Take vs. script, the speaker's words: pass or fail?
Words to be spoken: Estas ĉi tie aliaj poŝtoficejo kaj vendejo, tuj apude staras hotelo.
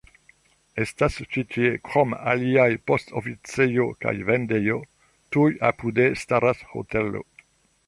fail